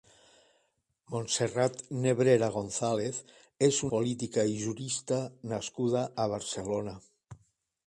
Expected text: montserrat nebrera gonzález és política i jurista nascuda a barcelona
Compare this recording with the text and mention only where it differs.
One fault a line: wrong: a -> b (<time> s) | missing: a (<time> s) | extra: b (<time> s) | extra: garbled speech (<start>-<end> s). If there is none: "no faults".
no faults